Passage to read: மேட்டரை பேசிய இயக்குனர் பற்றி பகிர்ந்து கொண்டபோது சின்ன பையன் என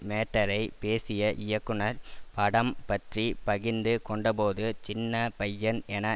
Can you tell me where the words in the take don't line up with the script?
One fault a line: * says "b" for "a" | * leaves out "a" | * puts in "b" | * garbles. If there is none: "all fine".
* puts in "படம்"